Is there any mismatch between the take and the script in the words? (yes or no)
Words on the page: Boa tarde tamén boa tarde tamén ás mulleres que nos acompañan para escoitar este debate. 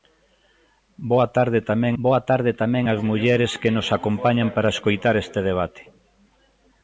no